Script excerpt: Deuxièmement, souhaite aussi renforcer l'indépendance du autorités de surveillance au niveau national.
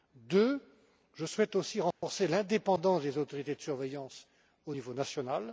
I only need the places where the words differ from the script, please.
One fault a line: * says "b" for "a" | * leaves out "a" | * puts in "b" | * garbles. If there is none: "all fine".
* puts in "je"
* says "des" for "du"